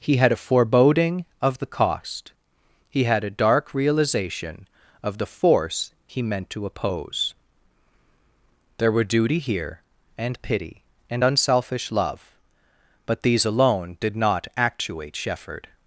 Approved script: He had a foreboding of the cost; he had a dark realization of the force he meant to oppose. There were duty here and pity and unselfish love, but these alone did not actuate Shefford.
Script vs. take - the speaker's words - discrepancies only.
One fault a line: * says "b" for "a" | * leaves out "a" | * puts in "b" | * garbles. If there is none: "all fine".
all fine